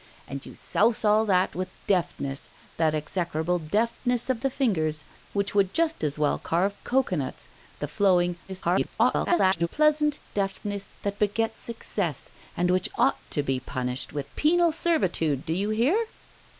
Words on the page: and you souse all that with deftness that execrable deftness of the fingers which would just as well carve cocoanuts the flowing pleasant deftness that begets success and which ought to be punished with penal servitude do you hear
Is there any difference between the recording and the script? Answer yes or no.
yes